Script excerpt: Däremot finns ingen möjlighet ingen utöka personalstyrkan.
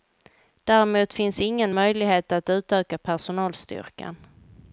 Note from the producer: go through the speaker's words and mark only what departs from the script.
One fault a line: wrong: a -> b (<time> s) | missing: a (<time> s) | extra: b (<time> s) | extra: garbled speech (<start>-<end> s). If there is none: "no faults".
wrong: ingen -> att (2.3 s)